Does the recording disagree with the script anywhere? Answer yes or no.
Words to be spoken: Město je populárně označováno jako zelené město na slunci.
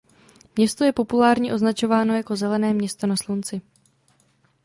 no